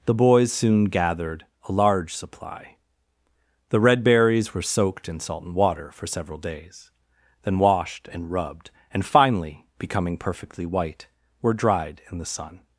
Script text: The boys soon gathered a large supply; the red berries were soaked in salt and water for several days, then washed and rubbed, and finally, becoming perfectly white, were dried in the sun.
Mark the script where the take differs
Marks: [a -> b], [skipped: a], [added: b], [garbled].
The boys soon gathered a large supply; the red berries were soaked in salt and water for several days, then washed and rubbed, and finally, becoming perfectly white, were dried in the sun.